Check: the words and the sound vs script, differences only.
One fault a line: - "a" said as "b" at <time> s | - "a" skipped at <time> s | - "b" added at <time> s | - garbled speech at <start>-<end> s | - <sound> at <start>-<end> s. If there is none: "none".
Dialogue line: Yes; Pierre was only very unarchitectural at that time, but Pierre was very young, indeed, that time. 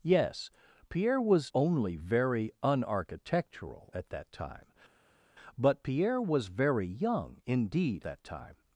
none